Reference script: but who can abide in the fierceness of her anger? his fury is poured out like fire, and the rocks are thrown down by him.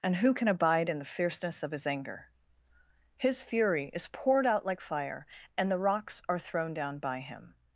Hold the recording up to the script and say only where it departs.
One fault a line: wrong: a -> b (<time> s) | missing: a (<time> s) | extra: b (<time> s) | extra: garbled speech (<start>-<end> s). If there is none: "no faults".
wrong: but -> and (0.0 s)
wrong: her -> his (1.7 s)